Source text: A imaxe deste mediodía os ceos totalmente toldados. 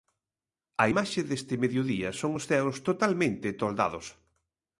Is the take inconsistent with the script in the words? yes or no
yes